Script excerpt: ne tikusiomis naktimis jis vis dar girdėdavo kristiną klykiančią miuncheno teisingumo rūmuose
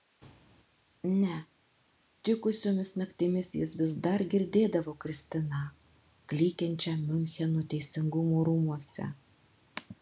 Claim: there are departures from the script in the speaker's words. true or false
false